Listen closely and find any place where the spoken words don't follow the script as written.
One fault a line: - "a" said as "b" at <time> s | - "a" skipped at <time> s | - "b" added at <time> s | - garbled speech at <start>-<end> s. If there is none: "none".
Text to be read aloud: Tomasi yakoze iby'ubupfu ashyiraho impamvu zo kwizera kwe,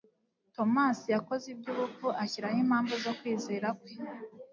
none